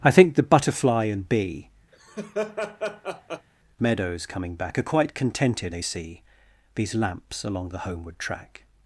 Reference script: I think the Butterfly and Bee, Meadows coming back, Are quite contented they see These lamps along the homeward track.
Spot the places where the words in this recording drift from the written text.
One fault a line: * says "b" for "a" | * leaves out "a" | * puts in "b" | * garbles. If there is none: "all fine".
all fine